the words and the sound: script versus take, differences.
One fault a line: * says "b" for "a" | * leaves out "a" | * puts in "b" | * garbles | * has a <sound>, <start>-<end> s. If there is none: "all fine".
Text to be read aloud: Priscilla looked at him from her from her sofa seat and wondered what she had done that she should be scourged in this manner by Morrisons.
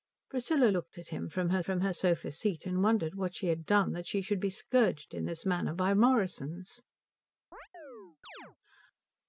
* has a chirp, 7.5-8.6 s